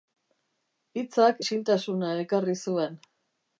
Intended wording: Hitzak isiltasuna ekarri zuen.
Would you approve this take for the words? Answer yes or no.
yes